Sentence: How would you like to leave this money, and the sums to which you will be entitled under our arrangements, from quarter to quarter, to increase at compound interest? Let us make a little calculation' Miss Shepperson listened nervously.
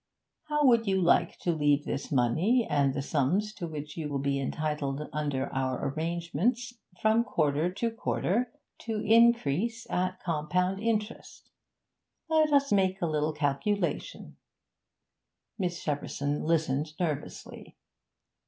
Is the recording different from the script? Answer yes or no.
no